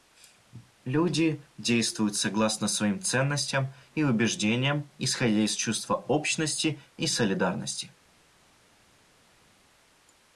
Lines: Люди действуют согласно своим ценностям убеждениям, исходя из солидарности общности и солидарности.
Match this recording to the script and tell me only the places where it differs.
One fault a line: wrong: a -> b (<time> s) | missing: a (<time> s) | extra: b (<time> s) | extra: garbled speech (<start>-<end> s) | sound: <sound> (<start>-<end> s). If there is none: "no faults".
extra: и (3.9 s)
wrong: солидарности -> чувства (5.5 s)